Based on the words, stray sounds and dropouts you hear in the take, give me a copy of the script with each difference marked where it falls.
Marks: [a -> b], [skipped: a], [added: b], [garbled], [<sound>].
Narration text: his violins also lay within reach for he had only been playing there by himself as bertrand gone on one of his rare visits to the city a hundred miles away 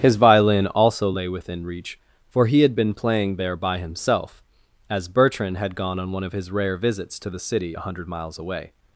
his [violins -> violin] also lay within reach for he had [skipped: only] been playing there by himself as bertrand [added: had] gone on one of his rare visits to the city a hundred miles away